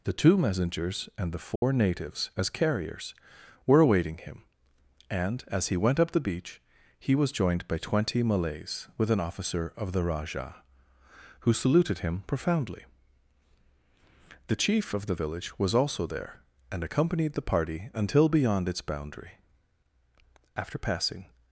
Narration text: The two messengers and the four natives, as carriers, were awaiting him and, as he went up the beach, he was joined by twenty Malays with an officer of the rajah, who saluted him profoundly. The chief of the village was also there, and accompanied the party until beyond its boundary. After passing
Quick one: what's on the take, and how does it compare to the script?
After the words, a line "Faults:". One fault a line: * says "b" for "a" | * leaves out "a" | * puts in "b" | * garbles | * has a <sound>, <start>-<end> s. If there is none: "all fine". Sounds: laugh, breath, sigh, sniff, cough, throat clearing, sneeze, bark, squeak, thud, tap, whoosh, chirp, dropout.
The two messengers and the four natives, as carriers, were awaiting him and, as he went up the beach, he was joined by twenty Malays with an officer of the rajah, who saluted him profoundly. The chief of the village was also there, and accompanied the party until beyond its boundary. After passing
Faults:
* has a dropout, 1.6-1.6 s